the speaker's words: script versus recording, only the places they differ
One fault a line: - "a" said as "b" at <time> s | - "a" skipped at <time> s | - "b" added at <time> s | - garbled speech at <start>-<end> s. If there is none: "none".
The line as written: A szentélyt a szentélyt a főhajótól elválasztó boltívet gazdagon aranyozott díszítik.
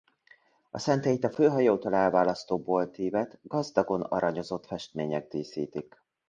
- "szentélyt a" skipped at 1.3 s
- "festmények" added at 4.7 s